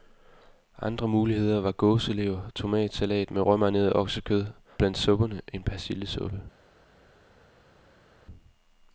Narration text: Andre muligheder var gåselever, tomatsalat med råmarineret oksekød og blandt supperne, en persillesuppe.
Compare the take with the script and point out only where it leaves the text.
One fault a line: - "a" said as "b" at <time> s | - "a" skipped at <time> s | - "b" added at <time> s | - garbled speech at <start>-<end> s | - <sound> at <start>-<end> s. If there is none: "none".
- "og" skipped at 4.4 s